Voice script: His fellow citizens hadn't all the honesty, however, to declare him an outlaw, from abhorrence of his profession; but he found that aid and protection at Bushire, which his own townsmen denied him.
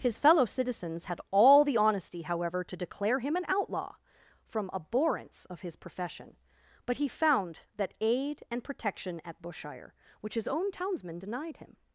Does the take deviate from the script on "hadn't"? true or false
true